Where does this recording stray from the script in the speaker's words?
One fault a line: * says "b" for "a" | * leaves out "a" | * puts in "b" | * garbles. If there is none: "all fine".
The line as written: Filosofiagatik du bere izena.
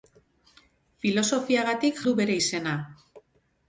all fine